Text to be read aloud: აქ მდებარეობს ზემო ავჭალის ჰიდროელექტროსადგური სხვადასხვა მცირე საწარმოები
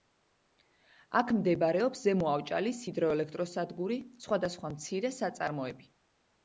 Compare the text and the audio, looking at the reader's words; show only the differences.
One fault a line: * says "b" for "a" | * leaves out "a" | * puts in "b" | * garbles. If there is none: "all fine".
all fine